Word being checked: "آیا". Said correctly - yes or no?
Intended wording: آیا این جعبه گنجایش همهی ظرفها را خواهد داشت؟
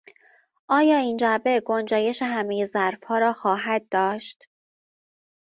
yes